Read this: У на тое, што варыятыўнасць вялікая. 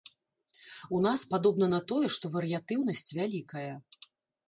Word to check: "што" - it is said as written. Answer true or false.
true